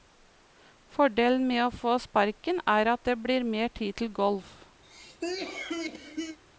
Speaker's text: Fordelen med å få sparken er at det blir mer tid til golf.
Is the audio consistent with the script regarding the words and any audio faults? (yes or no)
no